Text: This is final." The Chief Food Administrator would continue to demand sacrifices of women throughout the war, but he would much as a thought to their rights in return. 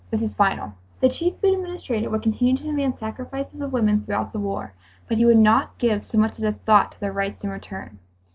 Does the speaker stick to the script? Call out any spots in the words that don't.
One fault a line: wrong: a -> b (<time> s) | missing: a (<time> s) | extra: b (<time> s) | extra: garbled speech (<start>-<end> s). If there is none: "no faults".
extra: not give so (5.4 s)